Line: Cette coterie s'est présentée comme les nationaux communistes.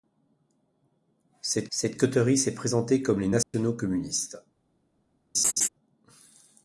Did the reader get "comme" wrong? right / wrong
right